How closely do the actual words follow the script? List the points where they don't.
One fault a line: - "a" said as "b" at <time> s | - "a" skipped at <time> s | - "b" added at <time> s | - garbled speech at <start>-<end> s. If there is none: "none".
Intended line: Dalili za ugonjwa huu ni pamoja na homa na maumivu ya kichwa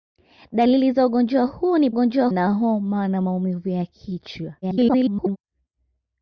- "pamoja" said as "ugonjwa" at 1.9 s
- garbled speech at 4.6-5.4 s